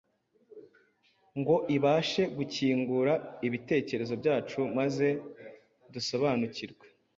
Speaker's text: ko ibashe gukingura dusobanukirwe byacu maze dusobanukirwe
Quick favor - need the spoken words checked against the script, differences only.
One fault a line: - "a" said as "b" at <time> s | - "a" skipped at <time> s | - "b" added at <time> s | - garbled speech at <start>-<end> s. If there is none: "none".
- "ko" said as "ngo" at 1.4 s
- "dusobanukirwe" said as "ibitekerezo" at 3.5 s